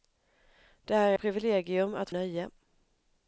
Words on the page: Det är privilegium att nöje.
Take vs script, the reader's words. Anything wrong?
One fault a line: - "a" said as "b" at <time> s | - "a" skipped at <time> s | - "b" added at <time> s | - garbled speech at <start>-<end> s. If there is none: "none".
none